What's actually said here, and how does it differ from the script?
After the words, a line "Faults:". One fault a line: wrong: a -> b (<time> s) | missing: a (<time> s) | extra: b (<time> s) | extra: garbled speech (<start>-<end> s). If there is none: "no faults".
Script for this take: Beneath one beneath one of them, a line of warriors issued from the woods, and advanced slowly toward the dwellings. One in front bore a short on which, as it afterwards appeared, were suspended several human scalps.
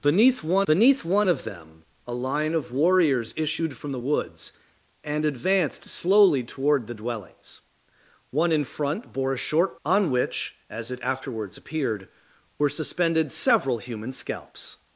Beneath one beneath one of them, a line of warriors issued from the woods, and advanced slowly toward the dwellings. One in front bore a short on which, as it afterwards appeared, were suspended several human scalps.
Faults:
no faults